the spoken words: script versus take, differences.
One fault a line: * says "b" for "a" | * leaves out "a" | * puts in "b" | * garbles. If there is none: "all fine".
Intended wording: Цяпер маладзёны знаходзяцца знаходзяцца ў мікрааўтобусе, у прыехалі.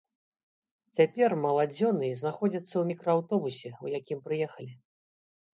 * leaves out "знаходзяцца"
* puts in "якім"